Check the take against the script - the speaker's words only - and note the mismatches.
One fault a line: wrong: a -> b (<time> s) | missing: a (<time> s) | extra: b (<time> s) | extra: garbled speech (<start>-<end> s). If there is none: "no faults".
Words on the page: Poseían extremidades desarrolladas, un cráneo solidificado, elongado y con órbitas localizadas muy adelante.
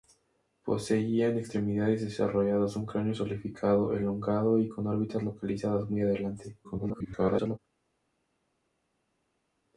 extra: garbled speech (6.6-7.6 s)